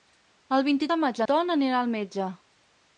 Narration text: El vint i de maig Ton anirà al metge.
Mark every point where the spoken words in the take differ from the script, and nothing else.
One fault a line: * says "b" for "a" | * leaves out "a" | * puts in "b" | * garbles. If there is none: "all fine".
all fine